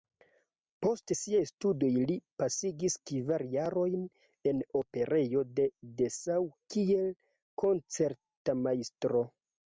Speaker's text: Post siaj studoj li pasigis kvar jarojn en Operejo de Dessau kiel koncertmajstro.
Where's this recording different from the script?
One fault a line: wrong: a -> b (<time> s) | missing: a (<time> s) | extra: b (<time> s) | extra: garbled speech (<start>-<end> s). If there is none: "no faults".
no faults